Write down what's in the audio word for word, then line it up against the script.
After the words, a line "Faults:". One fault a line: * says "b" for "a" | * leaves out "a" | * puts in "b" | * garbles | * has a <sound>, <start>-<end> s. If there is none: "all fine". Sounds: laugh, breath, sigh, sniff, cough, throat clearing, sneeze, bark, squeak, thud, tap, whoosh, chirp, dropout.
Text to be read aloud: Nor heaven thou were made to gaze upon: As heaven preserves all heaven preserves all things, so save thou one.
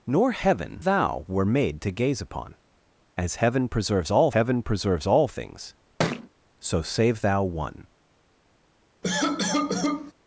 Nor heaven thou were made to gaze upon: As heaven preserves all heaven preserves all things, so save thou one.
Faults:
* has a thud, 6.0-6.3 s
* has a cough, 9.0-10.1 s